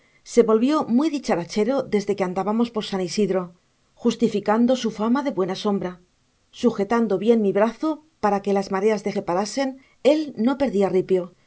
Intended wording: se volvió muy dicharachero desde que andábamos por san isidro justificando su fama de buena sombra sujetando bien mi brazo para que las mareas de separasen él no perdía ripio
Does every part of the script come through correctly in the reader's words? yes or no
yes